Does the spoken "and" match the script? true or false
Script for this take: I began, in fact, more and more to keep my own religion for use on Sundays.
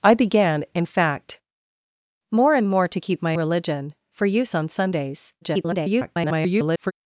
true